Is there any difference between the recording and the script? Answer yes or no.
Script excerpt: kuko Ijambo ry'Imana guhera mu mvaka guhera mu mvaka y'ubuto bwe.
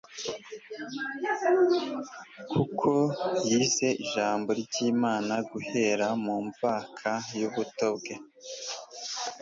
yes